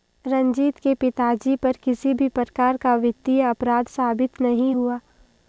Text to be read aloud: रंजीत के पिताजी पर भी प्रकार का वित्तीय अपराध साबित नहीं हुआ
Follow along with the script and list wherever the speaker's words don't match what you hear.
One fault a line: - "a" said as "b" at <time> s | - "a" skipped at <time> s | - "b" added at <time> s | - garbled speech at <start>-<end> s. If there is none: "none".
- "किसी" added at 1.8 s